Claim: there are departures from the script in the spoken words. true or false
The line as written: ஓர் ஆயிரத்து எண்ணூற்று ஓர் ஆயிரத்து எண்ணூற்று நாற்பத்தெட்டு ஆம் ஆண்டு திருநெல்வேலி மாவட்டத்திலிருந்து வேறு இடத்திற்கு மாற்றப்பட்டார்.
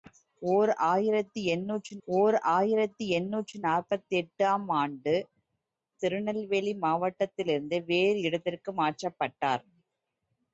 false